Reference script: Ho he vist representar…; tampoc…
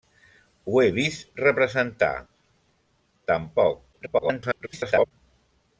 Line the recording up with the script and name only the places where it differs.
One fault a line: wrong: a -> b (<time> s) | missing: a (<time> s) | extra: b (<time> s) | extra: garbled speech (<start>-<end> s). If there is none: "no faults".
extra: garbled speech (3.9-5.1 s)